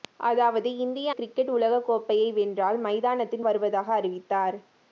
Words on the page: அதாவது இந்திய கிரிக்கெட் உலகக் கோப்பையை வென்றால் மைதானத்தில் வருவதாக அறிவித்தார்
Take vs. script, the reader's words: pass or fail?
pass